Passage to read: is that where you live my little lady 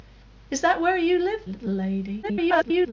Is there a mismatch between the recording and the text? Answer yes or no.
yes